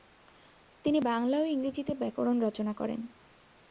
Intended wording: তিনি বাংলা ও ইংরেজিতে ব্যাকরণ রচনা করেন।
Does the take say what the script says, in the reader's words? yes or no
yes